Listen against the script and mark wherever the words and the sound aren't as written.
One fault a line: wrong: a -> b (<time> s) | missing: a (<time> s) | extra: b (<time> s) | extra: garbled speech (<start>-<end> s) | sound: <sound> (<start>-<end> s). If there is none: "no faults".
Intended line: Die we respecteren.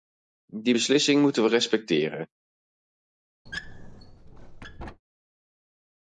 extra: beslissing moeten (0.7 s)
sound: squeak (3.5-5.0 s)